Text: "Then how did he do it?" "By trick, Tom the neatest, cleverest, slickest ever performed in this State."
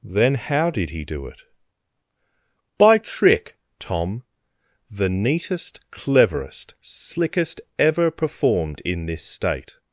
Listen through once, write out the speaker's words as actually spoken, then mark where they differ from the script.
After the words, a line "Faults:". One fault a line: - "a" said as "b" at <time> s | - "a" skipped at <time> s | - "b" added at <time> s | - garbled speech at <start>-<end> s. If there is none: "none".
"Then how did he do it?" "By trick, Tom the neatest, cleverest, slickest ever performed in this State."
Faults:
none